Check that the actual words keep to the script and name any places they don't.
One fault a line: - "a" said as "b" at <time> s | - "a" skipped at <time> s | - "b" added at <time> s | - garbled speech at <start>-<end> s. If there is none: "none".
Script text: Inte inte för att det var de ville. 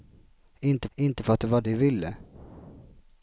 none